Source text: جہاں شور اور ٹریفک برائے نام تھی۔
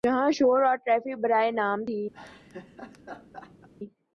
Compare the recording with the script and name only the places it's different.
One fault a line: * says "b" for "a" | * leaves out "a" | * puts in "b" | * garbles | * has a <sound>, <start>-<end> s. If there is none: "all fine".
* has a laugh, 2.1-3.7 s